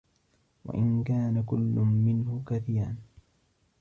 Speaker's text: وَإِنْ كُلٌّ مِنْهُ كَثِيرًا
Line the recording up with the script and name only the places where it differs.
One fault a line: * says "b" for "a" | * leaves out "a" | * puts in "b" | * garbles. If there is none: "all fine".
* puts in "كَانَ"